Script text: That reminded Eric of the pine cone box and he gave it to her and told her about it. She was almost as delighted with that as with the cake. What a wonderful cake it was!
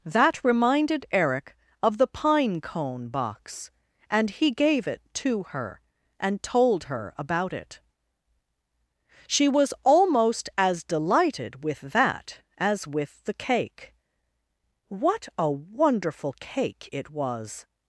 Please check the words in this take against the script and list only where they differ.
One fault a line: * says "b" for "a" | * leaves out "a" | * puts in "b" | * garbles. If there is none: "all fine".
all fine